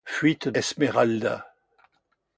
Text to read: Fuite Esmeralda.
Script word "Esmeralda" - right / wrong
right